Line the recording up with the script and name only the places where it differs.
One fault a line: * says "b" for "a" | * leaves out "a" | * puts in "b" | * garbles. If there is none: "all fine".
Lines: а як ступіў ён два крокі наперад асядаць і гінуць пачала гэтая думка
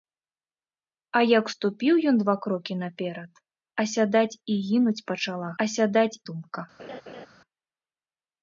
* says "асядаць" for "гэтая"